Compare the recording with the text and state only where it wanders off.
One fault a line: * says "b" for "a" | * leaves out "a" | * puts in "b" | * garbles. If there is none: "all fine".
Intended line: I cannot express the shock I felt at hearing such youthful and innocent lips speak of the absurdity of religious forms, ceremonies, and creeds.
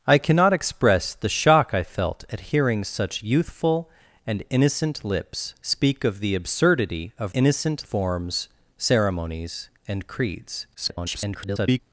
* says "innocent" for "religious"
* garbles